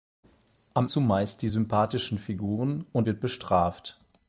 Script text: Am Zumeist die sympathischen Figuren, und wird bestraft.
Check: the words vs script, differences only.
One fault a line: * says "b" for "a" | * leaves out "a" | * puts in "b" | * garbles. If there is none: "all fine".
all fine